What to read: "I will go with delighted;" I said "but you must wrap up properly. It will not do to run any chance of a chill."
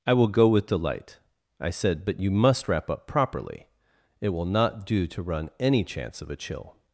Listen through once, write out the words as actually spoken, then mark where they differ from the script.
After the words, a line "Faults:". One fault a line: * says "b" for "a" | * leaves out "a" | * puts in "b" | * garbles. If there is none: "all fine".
"I will go with delight;" I said "but you must wrap up properly. It will not do to run any chance of a chill."
Faults:
* says "delight" for "delighted"